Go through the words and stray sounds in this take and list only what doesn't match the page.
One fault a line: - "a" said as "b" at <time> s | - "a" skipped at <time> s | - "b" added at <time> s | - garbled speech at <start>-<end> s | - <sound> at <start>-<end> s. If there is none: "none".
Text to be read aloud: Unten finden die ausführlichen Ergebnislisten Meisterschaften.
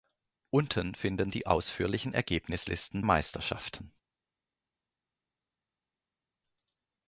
none